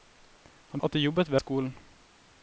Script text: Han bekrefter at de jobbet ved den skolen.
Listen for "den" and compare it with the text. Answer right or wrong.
wrong